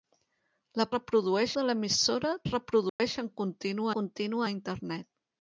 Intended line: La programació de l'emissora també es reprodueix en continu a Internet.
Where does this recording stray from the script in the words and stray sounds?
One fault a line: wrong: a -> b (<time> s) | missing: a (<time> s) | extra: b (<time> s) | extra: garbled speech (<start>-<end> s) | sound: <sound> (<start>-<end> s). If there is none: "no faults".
wrong: programació -> reprodueix (1.0 s)
missing: també (2.3 s)
sound: dropout (2.9-3.0 s)
extra: continu (4.0 s)